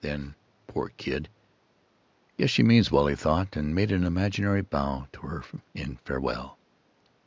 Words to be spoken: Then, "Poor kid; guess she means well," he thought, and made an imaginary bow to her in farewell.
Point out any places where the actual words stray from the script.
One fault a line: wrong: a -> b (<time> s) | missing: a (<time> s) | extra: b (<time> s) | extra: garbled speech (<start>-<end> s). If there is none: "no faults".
no faults